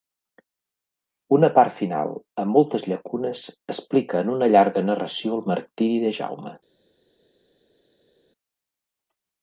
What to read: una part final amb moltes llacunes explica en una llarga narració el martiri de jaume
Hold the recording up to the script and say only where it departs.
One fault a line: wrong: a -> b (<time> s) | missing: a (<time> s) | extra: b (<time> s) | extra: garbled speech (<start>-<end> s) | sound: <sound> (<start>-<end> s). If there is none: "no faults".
no faults